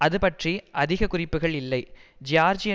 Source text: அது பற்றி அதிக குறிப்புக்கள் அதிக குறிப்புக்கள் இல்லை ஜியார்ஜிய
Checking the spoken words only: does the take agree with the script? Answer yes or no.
no